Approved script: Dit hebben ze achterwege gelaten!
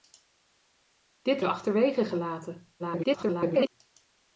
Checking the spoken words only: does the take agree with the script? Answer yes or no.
no